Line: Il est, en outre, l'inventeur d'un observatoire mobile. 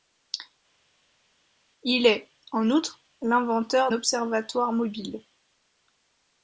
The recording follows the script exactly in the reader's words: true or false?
false